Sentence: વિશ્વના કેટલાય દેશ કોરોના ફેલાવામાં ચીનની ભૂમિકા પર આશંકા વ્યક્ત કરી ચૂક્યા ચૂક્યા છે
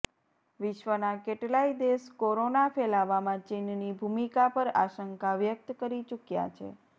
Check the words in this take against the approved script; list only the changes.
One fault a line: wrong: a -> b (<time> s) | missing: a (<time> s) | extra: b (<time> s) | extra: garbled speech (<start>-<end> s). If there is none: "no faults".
missing: ચૂક્યા (6.5 s)